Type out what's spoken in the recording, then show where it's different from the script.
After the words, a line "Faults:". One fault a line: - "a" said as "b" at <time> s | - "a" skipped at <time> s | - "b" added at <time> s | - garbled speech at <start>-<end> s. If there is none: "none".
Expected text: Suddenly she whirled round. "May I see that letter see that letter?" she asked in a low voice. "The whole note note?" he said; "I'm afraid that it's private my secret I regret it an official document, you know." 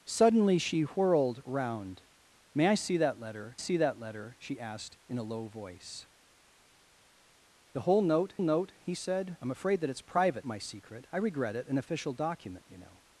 Suddenly she whirled round. "May I see that letter see that letter?" she asked in a low voice. "The whole note note?" he said; "I'm afraid that it's private my secret I regret it an official document, you know."
Faults:
none